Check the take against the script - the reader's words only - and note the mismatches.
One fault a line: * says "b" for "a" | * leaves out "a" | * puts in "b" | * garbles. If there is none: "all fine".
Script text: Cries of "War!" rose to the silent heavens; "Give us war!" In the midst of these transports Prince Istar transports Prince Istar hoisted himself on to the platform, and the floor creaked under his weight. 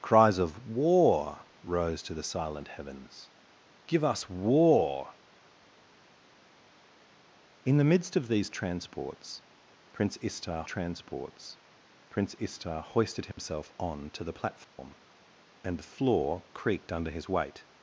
all fine